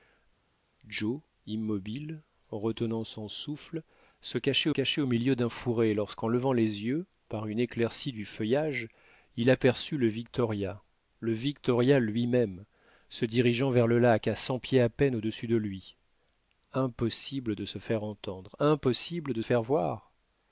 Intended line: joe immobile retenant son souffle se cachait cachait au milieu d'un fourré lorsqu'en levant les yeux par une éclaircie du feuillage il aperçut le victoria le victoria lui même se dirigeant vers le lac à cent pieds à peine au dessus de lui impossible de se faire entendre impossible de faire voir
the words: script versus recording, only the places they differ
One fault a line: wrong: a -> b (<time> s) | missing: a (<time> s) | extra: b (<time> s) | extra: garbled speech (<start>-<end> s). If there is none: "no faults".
no faults